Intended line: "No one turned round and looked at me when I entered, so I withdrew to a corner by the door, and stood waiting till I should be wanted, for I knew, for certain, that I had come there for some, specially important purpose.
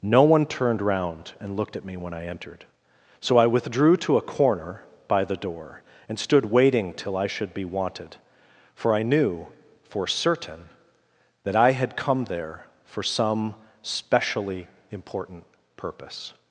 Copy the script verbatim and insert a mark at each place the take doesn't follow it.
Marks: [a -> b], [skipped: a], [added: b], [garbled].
"No one turned round and looked at me when I entered, so I withdrew to a corner by the door, and stood waiting till I should be wanted, for I knew, for certain, that I had come there for some, specially important purpose.